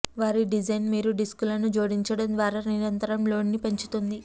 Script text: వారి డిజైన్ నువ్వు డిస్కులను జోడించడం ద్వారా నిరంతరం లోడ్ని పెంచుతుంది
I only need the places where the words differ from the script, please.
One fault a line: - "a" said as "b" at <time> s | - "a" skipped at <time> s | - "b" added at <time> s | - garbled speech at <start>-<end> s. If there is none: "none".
- "నువ్వు" said as "మీరు" at 0.9 s